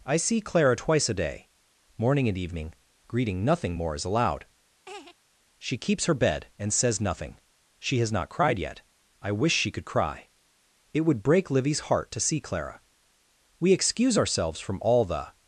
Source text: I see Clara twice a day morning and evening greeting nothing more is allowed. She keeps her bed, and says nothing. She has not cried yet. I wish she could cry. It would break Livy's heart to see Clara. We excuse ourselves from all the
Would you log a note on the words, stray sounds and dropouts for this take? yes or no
yes